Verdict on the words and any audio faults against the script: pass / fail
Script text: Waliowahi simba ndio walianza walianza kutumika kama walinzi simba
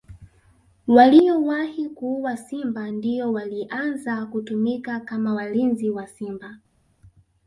fail